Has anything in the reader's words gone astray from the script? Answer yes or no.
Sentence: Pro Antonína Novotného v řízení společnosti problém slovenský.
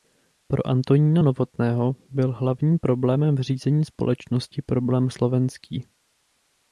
yes